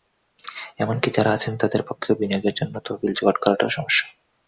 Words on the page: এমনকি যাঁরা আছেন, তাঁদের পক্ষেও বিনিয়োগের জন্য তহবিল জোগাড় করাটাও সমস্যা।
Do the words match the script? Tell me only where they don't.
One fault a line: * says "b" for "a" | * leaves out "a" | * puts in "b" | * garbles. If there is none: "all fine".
all fine